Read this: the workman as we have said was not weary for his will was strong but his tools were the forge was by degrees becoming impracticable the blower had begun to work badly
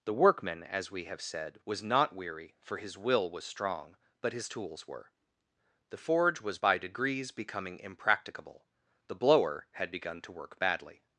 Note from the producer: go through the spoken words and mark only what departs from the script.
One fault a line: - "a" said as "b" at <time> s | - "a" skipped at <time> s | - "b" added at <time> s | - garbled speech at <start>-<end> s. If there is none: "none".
none